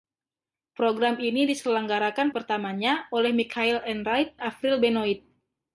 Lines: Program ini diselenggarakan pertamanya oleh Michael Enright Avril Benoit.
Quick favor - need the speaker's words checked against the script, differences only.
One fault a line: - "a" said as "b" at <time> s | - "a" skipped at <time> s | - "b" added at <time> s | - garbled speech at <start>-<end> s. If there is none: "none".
none